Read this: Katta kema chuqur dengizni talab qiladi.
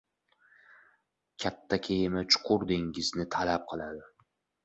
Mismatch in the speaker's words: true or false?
false